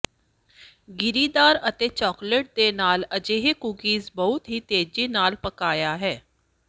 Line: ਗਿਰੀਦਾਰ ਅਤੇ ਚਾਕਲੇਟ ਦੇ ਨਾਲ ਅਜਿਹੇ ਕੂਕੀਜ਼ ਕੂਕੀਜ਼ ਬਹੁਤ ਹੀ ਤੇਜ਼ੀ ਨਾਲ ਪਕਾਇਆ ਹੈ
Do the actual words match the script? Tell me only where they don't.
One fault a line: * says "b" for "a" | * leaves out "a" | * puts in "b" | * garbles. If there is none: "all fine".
* leaves out "ਕੂਕੀਜ਼"